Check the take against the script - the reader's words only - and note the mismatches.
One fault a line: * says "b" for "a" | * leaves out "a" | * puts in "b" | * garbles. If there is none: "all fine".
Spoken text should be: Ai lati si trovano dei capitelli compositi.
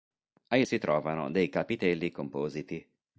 * leaves out "lati"